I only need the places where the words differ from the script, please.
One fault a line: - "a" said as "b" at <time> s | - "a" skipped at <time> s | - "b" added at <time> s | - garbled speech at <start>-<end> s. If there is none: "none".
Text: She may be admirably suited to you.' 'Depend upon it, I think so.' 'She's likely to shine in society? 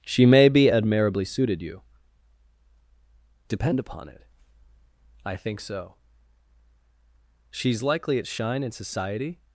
- "to" skipped at 1.6 s
- "to" said as "at" at 8.2 s